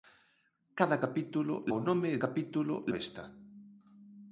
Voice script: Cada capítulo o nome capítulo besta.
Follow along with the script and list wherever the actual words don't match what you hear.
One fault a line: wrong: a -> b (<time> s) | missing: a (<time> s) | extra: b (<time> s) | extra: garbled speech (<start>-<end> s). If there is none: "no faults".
no faults